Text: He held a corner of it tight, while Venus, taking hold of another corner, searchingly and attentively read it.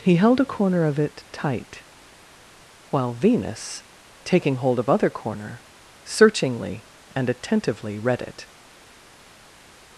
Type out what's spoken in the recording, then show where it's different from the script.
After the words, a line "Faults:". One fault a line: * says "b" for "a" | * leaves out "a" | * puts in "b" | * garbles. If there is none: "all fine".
He held a corner of it tight, while Venus, taking hold of other corner, searchingly and attentively read it.
Faults:
* says "other" for "another"